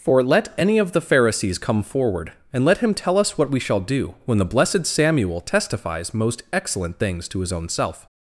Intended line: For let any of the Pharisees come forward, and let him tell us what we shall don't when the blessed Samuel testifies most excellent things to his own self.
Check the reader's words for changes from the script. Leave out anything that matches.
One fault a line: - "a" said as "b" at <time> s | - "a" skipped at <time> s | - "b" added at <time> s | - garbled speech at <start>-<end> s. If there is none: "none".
- "don't" said as "do" at 3.8 s